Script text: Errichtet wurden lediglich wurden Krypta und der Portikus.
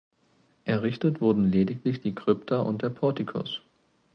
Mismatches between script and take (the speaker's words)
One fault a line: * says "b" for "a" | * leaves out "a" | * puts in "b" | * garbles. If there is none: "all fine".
* says "die" for "wurden"